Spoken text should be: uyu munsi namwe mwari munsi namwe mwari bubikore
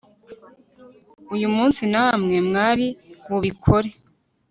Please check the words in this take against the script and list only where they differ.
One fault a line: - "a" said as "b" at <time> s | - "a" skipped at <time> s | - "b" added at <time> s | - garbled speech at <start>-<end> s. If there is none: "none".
- "munsi namwe mwari" skipped at 2.9 s